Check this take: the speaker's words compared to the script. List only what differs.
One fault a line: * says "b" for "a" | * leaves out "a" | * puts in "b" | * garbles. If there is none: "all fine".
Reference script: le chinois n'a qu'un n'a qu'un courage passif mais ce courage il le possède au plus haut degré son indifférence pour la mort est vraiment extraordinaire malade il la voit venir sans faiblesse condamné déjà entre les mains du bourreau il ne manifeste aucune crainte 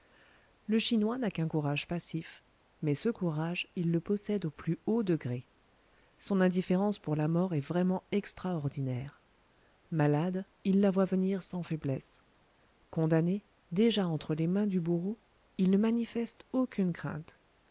* leaves out "n'a qu'un"